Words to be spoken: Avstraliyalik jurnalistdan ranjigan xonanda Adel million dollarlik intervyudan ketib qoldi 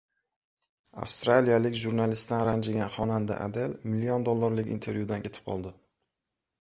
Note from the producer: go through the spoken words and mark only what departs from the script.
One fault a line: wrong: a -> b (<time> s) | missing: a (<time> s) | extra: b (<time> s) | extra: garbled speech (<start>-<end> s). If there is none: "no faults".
no faults